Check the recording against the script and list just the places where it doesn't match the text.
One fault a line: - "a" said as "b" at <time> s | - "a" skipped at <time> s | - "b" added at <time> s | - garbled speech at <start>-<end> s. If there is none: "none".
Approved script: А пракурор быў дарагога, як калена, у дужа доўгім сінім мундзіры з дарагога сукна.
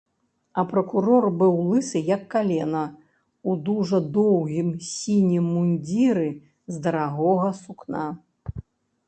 - "дарагога" said as "лысы" at 1.7 s